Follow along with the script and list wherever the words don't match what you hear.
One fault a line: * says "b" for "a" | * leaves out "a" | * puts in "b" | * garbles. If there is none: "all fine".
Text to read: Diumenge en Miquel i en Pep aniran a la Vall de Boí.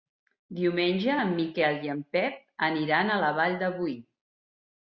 all fine